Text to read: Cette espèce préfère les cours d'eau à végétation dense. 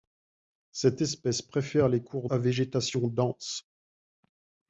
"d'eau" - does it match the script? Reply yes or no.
no